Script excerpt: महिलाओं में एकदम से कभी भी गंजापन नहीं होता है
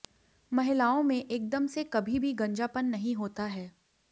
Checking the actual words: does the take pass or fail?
pass